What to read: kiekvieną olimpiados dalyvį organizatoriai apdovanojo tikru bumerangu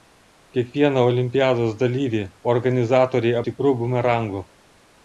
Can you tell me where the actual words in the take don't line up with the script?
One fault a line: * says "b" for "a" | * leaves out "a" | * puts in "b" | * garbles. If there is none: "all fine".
* leaves out "apdovanojo"